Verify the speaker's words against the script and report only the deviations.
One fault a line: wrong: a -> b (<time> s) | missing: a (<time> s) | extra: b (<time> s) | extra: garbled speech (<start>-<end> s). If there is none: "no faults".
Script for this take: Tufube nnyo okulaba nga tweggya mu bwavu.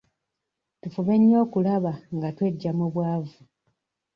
no faults